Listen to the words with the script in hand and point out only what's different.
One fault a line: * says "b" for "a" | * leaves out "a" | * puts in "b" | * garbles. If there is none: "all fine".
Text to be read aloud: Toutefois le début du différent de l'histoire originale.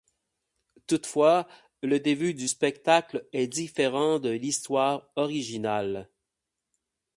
* puts in "spectacle est"